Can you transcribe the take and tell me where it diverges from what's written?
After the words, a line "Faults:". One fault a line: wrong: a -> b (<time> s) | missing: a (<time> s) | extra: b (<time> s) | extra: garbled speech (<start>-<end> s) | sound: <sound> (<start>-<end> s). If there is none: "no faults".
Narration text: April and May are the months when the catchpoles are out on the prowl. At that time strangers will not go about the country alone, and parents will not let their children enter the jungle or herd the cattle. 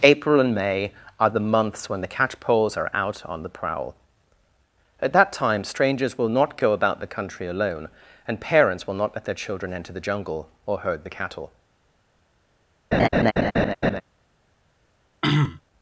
April and May are the months when the catchpoles are out on the prowl. At that time strangers will not go about the country alone, and parents will not let their children enter the jungle or herd the cattle.
Faults:
sound: laugh (12.9-14.0 s)
sound: throat clearing (15.2-15.6 s)